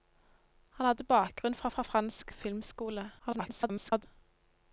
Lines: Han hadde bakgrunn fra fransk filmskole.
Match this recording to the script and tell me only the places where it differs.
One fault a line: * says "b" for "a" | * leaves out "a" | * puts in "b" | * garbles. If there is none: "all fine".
* puts in "fra"
* garbles